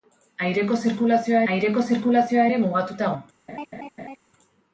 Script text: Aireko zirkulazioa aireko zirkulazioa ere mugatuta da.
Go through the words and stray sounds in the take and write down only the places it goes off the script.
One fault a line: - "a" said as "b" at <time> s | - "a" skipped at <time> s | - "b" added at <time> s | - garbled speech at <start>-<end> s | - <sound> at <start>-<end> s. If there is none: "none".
- laugh at 3.5-4.2 s